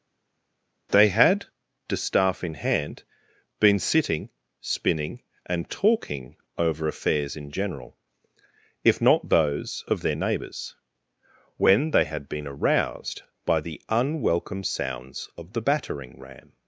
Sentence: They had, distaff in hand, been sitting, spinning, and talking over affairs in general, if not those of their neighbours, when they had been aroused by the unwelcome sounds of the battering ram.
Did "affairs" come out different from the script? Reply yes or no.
no